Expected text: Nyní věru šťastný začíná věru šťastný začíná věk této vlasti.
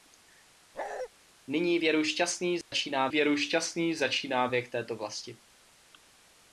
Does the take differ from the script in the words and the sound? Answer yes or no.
yes